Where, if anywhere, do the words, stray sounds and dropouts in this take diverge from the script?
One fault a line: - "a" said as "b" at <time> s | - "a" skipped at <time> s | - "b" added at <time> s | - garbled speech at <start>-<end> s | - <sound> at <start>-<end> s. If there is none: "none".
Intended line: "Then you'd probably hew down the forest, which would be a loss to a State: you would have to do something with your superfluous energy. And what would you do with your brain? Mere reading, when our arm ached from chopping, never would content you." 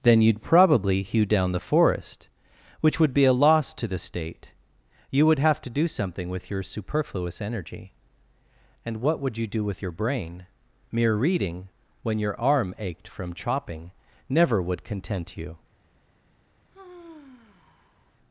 - "a" said as "the" at 3.9 s
- "our" said as "your" at 12.2 s
- sigh at 16.7-18.2 s